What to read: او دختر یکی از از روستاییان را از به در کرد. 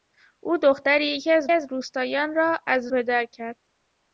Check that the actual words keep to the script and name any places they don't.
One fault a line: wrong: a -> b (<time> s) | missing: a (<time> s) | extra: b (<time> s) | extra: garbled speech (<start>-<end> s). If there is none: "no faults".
no faults